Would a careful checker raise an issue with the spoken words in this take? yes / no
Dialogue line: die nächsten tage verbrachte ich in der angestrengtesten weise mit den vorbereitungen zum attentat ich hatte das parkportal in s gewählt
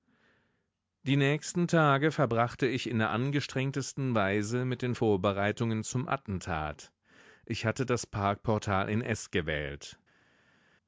no